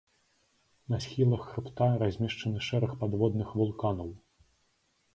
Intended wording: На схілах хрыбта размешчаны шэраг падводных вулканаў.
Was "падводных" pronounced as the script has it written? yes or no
yes